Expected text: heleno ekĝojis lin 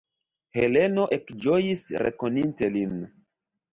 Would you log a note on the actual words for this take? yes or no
yes